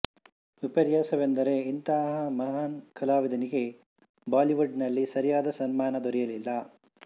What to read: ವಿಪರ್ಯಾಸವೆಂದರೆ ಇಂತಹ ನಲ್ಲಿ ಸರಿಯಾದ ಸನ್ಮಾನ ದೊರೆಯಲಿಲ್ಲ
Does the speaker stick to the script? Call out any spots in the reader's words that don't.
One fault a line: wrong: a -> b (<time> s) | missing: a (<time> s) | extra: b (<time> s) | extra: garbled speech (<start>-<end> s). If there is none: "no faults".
extra: ಮಹಾನ್ ಕಲಾವಿದನಿಗೆ ಬಾಲಿವುಡ್ (2.4 s)